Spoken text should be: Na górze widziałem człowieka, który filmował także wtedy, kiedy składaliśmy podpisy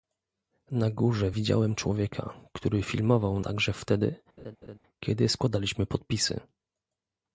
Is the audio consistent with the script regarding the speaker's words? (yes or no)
yes